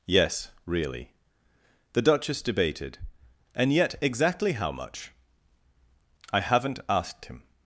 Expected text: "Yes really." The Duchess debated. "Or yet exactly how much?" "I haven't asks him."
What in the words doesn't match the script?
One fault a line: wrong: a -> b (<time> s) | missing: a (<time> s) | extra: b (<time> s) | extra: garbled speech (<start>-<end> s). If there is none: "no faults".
wrong: Or -> And (3.5 s)
wrong: asks -> asked (6.9 s)